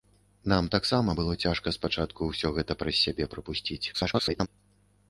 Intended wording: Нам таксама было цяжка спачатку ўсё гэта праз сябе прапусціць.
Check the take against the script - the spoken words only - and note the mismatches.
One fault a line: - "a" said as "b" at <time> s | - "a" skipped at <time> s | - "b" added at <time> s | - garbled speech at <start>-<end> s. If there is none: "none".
- garbled speech at 3.9-4.5 s